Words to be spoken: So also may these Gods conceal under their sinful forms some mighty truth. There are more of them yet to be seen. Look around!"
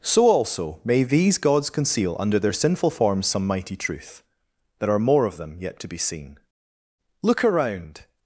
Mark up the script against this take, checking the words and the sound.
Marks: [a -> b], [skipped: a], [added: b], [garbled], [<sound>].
So also may these Gods conceal under their sinful forms some mighty truth. There are more of them yet to be seen. Look around!"